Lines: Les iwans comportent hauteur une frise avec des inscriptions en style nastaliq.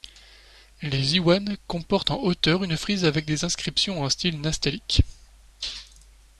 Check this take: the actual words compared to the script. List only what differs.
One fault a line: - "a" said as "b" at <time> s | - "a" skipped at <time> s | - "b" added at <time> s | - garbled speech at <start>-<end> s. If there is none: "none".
- "en" added at 2.1 s